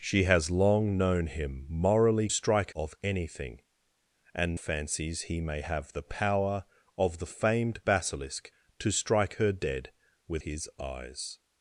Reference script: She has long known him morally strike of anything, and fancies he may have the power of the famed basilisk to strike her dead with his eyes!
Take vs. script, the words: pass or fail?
pass